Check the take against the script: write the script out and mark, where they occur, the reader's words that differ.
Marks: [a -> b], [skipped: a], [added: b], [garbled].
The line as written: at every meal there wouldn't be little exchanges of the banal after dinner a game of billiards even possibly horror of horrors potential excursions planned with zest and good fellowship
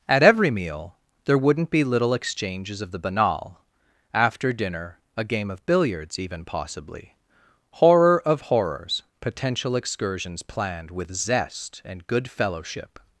at every meal there wouldn't be little exchanges of the banal after dinner a game of billiards even possibly horror of horrors potential excursions planned with zest and good fellowship